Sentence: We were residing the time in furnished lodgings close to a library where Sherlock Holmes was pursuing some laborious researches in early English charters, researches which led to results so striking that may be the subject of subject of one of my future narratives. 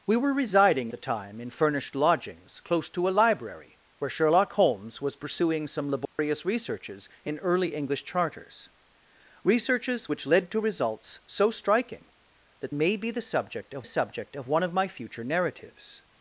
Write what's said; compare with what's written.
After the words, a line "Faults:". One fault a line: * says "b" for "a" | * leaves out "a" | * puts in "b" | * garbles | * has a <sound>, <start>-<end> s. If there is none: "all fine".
We were residing the time in furnished lodgings close to a library where Sherlock Holmes was pursuing some laborious researches in early English charters, researches which led to results so striking that may be the subject of subject of one of my future narratives.
Faults:
* has a dropout, 6.0-6.2 s